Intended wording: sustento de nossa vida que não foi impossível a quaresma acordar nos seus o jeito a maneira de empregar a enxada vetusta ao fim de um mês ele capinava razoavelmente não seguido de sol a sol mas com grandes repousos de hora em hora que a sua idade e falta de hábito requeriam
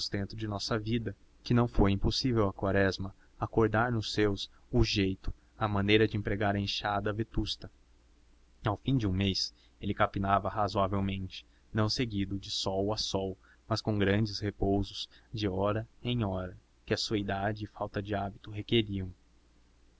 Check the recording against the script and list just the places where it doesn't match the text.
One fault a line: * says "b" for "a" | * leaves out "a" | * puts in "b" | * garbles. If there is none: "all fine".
all fine